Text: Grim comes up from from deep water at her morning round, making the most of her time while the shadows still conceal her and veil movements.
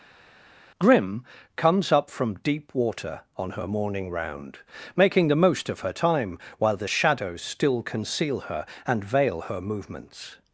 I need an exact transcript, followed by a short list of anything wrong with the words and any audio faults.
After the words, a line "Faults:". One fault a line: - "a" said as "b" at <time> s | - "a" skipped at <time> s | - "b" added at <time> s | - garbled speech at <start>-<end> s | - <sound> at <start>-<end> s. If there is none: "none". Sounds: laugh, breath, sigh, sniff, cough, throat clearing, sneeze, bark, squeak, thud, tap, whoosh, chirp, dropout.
Grim comes up from deep water on her morning round, making the most of her time while the shadows still conceal her and veil her movements.
Faults:
- "from" skipped at 2.4 s
- "at" said as "on" at 3.4 s
- "her" added at 9.4 s